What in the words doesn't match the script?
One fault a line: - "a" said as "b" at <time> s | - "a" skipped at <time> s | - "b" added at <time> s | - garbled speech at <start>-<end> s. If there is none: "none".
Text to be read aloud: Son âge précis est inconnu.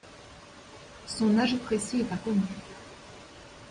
none